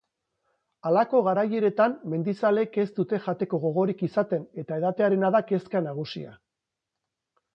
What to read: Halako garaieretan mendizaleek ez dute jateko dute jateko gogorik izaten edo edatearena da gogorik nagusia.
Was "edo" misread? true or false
true